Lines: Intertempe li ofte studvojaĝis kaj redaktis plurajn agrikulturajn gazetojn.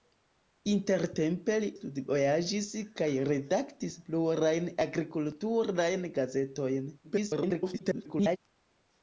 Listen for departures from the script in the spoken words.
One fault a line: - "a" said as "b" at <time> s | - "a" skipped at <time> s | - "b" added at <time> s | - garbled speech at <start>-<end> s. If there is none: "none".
- "ofte" skipped at 1.7 s
- garbled speech at 7.0-8.4 s